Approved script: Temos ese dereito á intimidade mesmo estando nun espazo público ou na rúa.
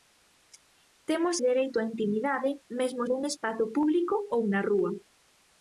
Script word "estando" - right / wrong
wrong